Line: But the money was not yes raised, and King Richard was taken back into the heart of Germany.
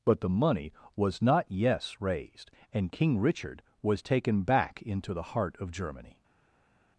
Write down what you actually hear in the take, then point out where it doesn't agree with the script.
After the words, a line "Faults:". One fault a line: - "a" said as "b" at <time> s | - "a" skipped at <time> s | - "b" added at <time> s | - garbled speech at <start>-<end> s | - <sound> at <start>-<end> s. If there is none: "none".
But the money was not yes raised, and King Richard was taken back into the heart of Germany.
Faults:
none